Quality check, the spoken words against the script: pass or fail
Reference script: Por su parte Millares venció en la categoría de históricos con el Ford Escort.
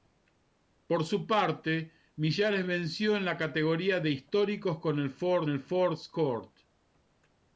fail